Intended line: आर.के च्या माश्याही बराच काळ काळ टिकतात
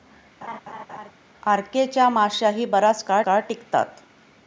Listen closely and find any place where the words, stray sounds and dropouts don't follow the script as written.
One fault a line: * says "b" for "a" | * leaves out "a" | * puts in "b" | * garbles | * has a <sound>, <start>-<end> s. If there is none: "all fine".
* has a laugh, 0.4-1.1 s